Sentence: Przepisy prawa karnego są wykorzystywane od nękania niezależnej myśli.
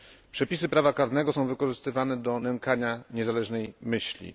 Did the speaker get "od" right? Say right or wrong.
wrong